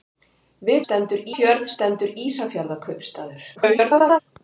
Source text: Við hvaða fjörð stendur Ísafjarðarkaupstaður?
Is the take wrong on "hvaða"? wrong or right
wrong